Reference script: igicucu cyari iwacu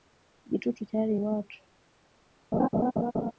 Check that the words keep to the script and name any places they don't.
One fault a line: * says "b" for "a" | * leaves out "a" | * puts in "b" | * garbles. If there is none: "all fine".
all fine